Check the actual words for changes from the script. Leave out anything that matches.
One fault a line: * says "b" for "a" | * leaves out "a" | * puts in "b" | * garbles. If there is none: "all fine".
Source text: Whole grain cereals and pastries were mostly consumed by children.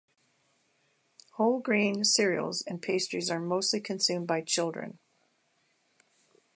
* says "are" for "were"